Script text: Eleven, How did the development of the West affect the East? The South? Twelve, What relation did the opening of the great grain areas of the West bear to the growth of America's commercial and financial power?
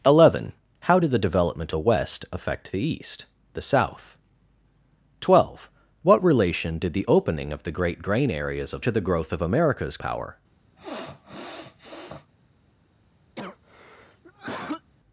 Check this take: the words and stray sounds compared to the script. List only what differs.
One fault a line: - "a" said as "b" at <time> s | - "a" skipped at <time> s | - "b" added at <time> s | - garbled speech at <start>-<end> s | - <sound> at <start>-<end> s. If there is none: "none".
- "of" skipped at 1.7 s
- "the West bear" skipped at 8.8 s
- "commercial and financial" skipped at 10.0 s
- sniff at 10.8-12.3 s
- cough at 13.4-14.9 s